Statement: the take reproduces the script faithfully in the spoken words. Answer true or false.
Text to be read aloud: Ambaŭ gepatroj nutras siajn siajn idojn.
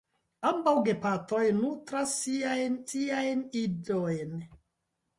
true